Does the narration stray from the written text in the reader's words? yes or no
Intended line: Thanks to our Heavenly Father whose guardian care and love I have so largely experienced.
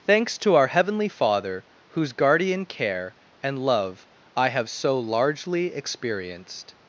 no